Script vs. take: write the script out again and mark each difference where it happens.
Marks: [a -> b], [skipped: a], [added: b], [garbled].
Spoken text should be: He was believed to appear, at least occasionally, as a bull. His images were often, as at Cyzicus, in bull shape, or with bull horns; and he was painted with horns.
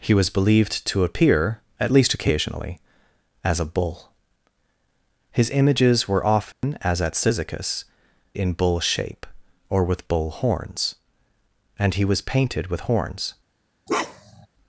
He was believed to appear, at least occasionally, as a bull. His images were often, as at Cyzicus, in bull shape, or with bull horns; and he was painted with horns.